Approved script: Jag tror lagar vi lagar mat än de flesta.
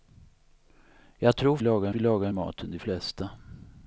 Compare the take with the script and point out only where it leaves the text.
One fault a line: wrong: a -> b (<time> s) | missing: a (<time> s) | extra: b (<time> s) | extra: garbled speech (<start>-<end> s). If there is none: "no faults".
no faults